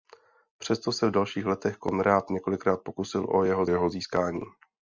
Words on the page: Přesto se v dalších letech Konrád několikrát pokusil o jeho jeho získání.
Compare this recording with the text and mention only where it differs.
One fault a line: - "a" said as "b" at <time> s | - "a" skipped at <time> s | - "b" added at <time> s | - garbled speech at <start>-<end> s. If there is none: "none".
none